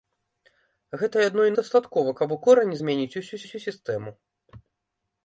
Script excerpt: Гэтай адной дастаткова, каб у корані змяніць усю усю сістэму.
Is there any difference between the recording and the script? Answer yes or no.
no